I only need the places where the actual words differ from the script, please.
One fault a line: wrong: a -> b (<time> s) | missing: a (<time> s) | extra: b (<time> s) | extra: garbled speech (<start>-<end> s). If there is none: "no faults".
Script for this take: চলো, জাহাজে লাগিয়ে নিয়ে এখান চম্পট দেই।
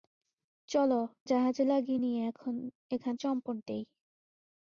no faults